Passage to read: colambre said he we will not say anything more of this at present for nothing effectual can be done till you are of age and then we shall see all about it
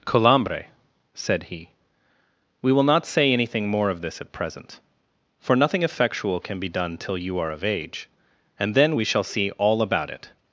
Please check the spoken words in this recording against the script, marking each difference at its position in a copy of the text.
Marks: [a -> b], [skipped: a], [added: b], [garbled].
colambre said he we will not say anything more of this at present for nothing effectual can be done till you are of age and then we shall see all about it